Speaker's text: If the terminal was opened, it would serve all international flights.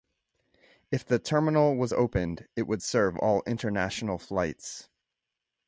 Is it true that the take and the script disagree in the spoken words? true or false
false